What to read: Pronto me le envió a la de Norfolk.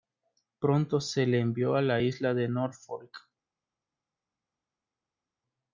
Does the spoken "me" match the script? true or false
false